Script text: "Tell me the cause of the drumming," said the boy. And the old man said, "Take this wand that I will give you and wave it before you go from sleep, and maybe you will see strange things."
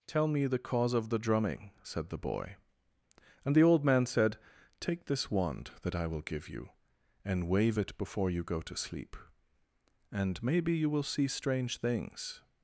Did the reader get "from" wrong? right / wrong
wrong